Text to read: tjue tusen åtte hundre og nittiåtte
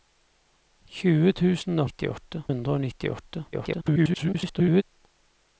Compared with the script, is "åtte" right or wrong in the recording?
wrong